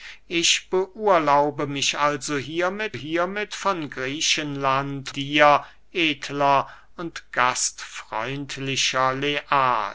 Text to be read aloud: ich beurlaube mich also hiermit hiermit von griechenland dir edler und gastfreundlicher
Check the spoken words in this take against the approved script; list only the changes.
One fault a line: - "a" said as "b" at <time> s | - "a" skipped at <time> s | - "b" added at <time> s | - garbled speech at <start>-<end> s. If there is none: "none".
none